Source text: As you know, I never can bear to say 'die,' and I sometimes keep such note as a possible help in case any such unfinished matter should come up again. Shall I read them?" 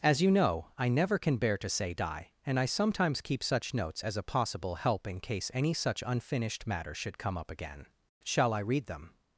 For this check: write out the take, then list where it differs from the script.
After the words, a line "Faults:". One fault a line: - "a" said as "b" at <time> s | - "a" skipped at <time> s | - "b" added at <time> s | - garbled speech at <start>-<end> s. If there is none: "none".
As you know, I never can bear to say 'die,' and I sometimes keep such notes as a possible help in case any such unfinished matter should come up again. Shall I read them?"
Faults:
- "note" said as "notes" at 3.7 s